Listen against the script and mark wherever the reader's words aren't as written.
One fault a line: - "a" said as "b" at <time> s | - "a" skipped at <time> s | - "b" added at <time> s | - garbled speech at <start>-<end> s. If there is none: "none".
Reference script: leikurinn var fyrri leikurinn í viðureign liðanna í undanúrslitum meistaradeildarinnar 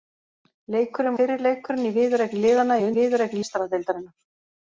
- "var" skipped at 1.2 s
- "undanúrslitum" said as "viðureign" at 3.0 s